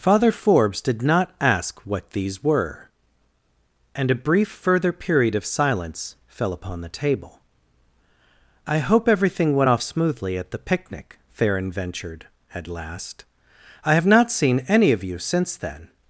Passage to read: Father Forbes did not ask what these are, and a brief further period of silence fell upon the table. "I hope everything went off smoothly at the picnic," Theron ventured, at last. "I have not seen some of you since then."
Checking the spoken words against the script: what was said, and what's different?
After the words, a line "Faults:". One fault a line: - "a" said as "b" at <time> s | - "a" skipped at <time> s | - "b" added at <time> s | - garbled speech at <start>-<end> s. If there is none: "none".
Father Forbes did not ask what these were, and a brief further period of silence fell upon the table. "I hope everything went off smoothly at the picnic," Theron ventured, at last. "I have not seen any of you since then."
Faults:
- "are" said as "were" at 2.4 s
- "some" said as "any" at 14.7 s